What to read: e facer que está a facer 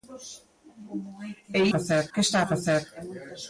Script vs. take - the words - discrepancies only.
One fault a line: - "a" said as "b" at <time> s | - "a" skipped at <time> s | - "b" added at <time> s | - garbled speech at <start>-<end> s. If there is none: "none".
none